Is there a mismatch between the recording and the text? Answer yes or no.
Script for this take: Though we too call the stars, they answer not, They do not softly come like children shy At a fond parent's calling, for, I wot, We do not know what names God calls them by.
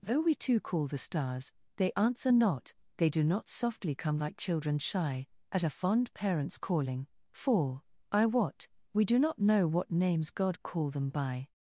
yes